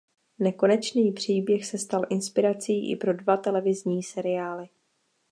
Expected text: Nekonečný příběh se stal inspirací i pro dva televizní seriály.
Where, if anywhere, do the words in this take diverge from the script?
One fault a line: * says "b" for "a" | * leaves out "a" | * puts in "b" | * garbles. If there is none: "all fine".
all fine